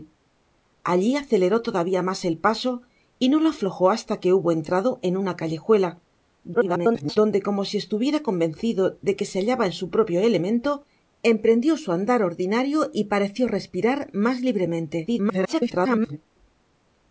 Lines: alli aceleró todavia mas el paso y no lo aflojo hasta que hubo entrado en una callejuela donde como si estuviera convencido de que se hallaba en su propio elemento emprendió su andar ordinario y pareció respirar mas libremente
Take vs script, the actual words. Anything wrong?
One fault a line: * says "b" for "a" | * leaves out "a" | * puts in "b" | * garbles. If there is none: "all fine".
* garbles
* garbles